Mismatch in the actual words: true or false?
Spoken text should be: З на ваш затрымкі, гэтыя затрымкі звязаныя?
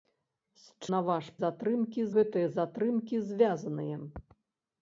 false